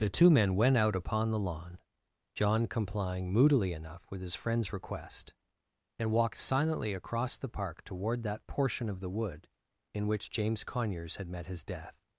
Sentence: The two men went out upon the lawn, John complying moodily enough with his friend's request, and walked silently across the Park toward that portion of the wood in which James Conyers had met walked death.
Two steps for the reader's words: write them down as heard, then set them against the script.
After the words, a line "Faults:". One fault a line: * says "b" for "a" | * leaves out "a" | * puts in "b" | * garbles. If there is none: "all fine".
The two men went out upon the lawn, John complying moodily enough with his friend's request, and walked silently across the Park toward that portion of the wood in which James Conyers had met his death.
Faults:
* says "his" for "walked"